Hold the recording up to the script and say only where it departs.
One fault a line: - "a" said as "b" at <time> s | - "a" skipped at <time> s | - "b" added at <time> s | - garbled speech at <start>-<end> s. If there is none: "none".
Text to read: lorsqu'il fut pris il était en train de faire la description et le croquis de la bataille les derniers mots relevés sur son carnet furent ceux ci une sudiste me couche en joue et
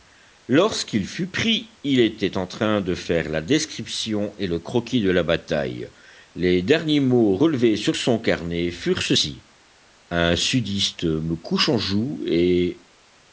- "une" said as "un" at 10.1 s